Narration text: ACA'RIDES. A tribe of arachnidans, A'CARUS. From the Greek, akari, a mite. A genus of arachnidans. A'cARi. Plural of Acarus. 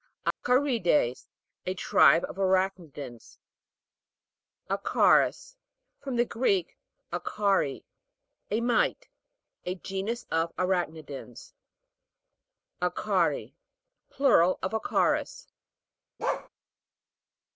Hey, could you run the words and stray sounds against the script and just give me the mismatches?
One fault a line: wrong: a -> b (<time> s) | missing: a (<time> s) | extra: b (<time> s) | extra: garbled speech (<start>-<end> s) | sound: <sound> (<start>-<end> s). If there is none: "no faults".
sound: dropout (0.3-0.4 s)
sound: bark (16.2-16.5 s)